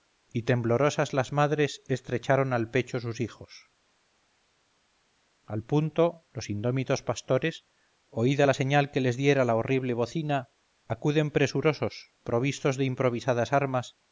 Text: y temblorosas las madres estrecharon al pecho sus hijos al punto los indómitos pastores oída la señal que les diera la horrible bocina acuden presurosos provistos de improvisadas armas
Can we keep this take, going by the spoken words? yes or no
yes